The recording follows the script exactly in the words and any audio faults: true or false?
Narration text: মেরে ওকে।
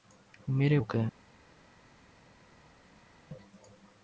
true